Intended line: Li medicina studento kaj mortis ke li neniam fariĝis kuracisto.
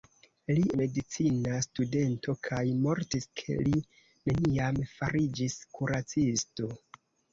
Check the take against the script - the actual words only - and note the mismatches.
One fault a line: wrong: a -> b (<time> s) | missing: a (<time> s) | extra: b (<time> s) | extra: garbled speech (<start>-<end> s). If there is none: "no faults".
no faults